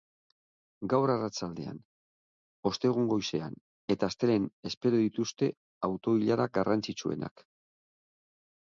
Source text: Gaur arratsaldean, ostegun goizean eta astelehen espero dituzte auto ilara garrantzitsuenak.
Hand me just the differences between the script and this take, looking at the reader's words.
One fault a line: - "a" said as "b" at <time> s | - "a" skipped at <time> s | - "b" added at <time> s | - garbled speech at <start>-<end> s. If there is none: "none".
none